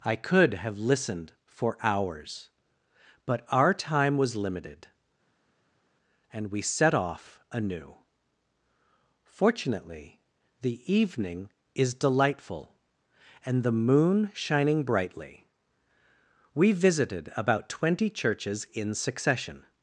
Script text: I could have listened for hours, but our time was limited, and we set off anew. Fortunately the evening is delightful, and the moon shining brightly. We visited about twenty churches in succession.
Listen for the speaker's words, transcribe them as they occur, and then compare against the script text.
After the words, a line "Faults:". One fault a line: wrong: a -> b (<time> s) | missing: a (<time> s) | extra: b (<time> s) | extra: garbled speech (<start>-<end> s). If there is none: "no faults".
I could have listened for hours, but our time was limited, and we set off anew. Fortunately the evening is delightful, and the moon shining brightly. We visited about twenty churches in succession.
Faults:
no faults